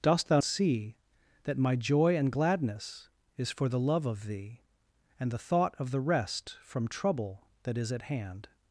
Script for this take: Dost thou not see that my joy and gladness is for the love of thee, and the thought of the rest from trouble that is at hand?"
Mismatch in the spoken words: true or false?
true